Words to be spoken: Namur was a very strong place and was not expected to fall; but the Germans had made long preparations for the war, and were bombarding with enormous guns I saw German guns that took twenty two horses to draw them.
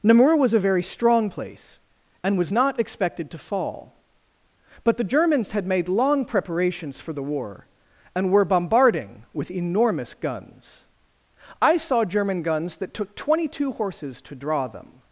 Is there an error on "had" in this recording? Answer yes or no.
no